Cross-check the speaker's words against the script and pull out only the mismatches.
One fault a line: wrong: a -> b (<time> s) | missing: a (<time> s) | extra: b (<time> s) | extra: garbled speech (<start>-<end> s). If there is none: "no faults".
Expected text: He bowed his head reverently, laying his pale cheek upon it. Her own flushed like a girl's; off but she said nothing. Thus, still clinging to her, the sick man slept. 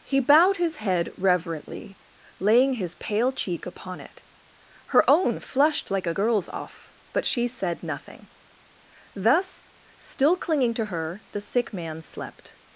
no faults